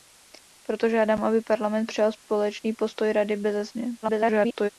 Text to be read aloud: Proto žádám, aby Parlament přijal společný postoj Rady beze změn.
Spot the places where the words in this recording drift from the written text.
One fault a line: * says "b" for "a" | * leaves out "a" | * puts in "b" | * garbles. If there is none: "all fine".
* garbles